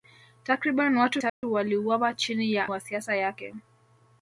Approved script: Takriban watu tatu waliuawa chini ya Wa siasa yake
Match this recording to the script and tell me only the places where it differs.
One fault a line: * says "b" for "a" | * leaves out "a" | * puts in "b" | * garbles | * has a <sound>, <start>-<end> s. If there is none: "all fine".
* has a dropout, 1.3-1.4 s